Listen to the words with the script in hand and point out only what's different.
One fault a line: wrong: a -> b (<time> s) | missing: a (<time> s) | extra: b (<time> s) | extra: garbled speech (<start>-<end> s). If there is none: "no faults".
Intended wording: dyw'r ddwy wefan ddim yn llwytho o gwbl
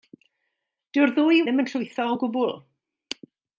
missing: wefan (1.4 s)